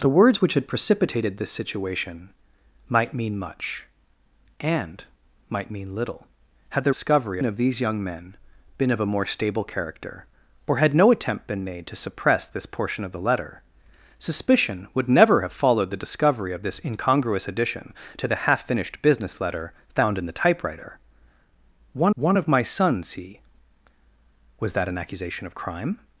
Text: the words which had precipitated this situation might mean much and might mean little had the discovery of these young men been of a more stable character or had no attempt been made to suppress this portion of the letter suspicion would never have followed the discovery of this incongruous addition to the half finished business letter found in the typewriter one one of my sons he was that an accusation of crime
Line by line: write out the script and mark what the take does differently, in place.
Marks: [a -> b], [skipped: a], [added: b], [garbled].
the words which had precipitated this situation might mean much and might mean little had the discovery of these young men been of a more stable character or had no attempt been made to suppress this portion of the letter suspicion would never have followed the discovery of this incongruous addition to the half finished business letter found in the typewriter one one of my sons he was that an accusation of crime